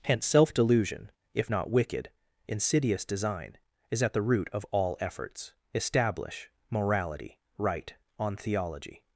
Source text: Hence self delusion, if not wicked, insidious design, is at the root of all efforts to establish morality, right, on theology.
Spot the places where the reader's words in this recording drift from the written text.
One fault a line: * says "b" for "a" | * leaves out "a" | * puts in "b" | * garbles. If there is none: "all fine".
* leaves out "to"